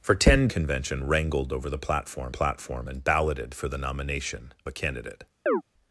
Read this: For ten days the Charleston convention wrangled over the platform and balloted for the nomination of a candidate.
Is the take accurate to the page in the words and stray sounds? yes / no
no